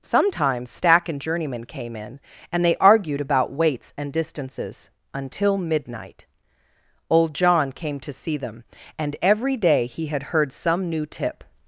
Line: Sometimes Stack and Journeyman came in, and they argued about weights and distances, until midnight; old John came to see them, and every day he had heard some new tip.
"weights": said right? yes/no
yes